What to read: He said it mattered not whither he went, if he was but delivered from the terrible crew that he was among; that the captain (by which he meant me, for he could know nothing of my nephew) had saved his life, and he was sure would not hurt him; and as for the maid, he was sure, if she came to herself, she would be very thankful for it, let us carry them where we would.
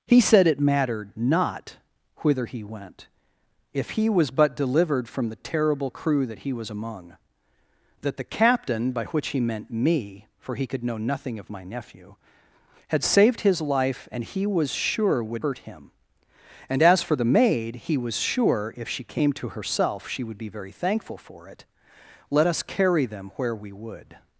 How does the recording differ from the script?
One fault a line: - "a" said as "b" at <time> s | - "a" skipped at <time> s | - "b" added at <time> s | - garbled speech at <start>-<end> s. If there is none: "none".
- "not" skipped at 15.4 s